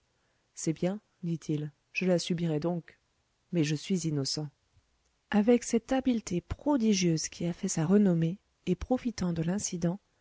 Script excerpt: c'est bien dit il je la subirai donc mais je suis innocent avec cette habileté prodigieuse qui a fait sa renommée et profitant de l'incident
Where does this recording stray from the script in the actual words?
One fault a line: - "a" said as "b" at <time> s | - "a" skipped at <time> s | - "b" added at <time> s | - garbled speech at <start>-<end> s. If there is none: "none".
none